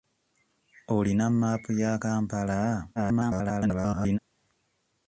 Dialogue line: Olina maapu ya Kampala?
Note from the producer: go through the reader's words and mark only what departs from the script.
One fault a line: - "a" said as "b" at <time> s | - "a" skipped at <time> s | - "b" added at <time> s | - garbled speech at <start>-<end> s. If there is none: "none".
- garbled speech at 3.0-4.2 s